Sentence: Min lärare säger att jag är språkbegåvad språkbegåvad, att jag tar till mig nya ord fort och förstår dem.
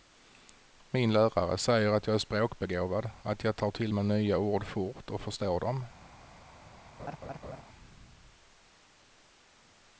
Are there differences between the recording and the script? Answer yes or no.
yes